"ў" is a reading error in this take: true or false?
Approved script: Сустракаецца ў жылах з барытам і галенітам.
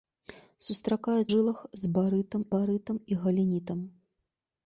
true